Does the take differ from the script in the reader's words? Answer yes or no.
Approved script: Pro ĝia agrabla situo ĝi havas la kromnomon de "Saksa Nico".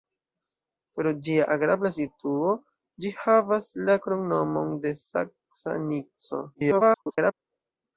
yes